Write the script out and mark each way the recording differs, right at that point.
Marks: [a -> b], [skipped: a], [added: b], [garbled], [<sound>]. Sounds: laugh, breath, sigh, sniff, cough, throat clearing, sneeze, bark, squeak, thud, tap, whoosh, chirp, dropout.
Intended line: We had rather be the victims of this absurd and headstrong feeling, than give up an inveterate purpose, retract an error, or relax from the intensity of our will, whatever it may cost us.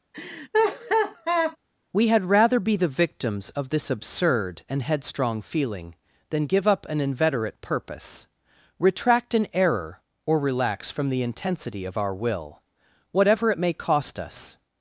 [laugh] We had rather be the victims of this absurd and headstrong feeling, than give up an inveterate purpose, retract an error, or relax from the intensity of our will, whatever it may cost us.